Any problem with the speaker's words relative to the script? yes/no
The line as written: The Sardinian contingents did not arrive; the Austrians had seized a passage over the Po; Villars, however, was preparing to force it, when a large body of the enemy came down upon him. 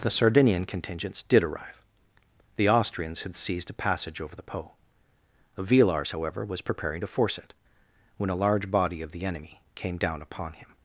yes